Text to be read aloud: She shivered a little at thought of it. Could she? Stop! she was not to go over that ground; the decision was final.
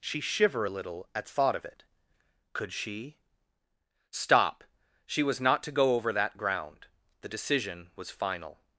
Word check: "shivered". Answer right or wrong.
wrong